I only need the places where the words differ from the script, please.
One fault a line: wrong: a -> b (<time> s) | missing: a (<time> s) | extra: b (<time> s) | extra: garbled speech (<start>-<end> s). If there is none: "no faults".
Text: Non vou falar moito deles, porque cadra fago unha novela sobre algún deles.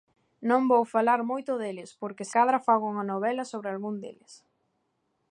no faults